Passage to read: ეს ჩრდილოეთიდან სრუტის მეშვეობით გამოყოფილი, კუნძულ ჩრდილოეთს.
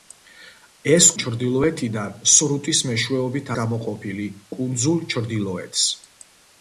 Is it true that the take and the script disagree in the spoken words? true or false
false